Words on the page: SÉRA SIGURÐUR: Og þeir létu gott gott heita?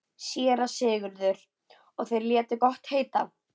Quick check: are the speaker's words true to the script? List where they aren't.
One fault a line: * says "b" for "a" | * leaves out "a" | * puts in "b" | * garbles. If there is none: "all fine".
* leaves out "gott"